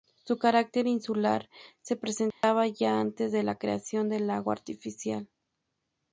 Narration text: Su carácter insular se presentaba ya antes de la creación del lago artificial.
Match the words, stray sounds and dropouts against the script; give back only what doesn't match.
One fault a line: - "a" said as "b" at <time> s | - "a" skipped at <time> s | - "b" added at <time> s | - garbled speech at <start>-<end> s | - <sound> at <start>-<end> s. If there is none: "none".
- dropout at 2.3-2.4 s